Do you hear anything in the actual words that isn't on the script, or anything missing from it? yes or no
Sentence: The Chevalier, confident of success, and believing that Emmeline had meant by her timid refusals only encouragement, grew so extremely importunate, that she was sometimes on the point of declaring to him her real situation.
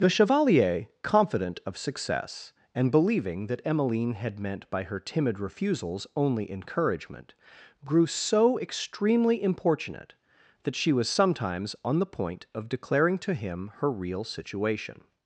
no